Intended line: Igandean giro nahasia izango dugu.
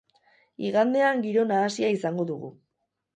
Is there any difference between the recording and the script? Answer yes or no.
no